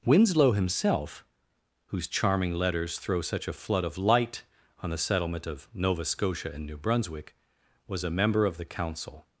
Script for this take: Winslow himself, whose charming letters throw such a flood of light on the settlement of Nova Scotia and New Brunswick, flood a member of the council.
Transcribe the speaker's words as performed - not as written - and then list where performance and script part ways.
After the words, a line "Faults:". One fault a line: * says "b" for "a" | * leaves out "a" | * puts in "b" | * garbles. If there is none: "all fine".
Winslow himself, whose charming letters throw such a flood of light on the settlement of Nova Scotia and New Brunswick, was a member of the council.
Faults:
* says "was" for "flood"